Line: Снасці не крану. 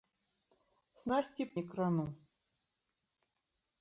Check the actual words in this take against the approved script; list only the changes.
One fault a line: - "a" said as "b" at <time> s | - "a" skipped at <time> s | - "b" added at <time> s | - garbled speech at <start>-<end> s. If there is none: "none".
none